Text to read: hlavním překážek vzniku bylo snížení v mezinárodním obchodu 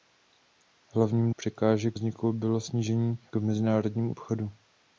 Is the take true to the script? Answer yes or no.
yes